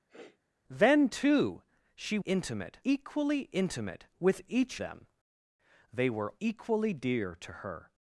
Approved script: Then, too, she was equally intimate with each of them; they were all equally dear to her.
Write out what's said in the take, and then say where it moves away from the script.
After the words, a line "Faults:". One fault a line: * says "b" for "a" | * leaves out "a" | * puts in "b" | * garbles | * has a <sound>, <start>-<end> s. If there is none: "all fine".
Then, too, she intimate equally intimate with each them; they were equally dear to her.
Faults:
* has a sniff, 0.1-0.4 s
* says "intimate" for "was"
* leaves out "of"
* leaves out "all"